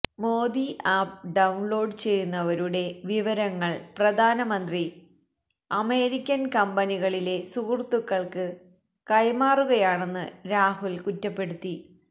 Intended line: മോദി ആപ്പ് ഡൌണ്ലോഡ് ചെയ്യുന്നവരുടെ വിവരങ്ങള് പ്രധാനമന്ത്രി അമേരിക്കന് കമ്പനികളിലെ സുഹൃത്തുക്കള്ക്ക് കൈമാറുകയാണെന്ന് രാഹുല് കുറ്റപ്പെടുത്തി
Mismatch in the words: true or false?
false